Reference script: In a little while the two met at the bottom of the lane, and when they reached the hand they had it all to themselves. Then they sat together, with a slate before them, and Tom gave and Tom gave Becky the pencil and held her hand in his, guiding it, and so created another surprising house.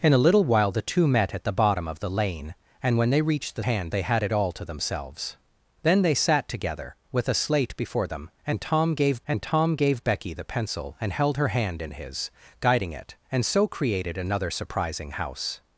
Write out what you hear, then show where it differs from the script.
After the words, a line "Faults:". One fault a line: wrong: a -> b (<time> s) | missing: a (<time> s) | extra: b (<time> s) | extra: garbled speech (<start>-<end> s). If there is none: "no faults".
In a little while the two met at the bottom of the lane, and when they reached the hand they had it all to themselves. Then they sat together, with a slate before them, and Tom gave and Tom gave Becky the pencil and held her hand in his, guiding it, and so created another surprising house.
Faults:
no faults